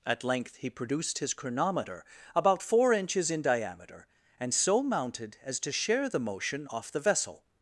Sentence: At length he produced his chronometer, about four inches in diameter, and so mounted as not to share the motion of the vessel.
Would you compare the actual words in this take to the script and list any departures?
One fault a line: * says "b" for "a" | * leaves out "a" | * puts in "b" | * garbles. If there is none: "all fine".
* leaves out "not"
* says "off" for "of"